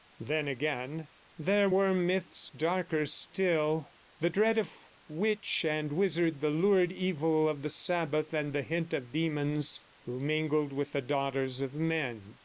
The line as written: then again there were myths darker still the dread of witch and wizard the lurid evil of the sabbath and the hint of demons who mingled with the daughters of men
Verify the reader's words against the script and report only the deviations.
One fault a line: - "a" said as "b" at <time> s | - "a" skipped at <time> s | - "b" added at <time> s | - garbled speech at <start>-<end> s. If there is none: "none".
none